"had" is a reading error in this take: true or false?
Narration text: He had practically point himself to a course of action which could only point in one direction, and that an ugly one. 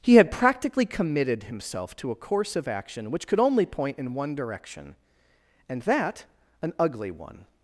false